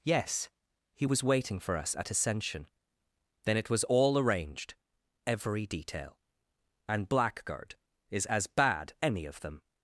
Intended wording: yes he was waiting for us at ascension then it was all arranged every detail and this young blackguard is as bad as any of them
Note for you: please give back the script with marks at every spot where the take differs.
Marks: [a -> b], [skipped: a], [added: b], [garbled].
yes he was waiting for us at ascension then it was all arranged every detail and [skipped: this young] blackguard is as bad [skipped: as] any of them